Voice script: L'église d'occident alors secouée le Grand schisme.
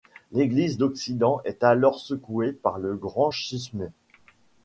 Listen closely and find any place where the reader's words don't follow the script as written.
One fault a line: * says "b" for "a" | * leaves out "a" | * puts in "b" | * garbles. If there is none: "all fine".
* puts in "est"
* puts in "par"